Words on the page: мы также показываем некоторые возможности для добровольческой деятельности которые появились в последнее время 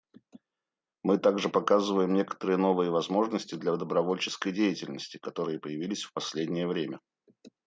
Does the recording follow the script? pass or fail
fail